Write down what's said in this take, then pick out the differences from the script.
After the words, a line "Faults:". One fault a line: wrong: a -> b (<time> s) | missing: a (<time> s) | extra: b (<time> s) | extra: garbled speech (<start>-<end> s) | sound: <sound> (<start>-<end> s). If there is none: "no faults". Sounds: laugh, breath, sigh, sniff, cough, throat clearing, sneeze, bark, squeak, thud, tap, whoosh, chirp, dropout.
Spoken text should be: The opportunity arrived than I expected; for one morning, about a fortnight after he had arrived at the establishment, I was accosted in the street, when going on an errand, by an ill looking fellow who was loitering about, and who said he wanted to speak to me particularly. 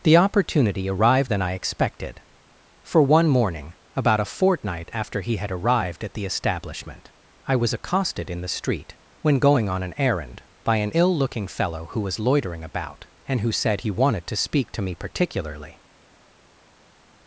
The opportunity arrived than I expected; for one morning, about a fortnight after he had arrived at the establishment, I was accosted in the street, when going on an errand, by an ill looking fellow who was loitering about, and who said he wanted to speak to me particularly.
Faults:
no faults